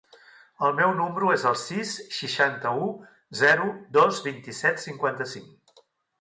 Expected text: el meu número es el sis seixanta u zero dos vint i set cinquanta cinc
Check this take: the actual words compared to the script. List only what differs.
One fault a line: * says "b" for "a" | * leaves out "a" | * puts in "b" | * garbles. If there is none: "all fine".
all fine